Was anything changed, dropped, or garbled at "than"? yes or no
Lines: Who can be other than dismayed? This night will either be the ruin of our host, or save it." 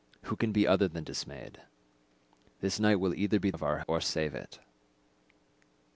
no